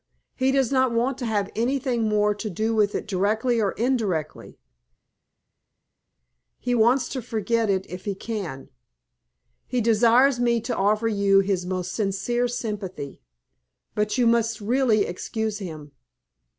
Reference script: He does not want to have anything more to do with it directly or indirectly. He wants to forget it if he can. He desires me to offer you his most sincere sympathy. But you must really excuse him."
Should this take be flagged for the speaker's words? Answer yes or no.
no